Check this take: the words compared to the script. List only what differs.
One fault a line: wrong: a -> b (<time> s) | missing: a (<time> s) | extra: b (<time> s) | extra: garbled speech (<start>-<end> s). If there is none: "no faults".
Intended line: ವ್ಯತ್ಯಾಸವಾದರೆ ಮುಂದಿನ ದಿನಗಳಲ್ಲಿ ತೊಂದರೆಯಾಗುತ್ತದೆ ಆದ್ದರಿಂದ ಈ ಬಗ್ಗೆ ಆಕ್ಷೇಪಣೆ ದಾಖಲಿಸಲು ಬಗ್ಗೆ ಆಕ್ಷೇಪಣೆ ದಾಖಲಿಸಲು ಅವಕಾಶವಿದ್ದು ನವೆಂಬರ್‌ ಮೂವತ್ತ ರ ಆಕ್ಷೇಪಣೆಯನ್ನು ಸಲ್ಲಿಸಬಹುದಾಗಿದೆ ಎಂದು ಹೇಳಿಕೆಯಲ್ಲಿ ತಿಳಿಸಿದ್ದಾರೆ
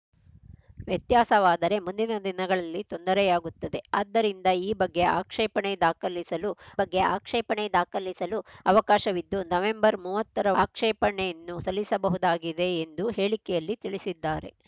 no faults